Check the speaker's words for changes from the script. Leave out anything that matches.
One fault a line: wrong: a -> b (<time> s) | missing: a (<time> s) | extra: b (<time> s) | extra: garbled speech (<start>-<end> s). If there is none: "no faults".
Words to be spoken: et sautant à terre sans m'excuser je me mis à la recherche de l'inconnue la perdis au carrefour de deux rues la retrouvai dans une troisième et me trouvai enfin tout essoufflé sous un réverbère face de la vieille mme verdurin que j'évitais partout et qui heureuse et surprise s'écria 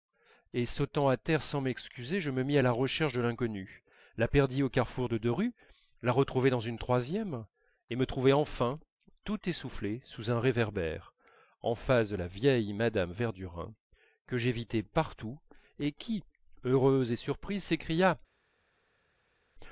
extra: en (11.6 s)